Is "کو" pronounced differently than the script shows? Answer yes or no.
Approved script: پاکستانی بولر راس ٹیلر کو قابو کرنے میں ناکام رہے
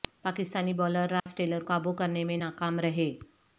yes